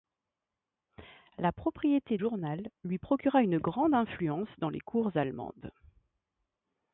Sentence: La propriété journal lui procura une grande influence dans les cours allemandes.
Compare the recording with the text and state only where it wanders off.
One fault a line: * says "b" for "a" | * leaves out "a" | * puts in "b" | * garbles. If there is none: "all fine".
all fine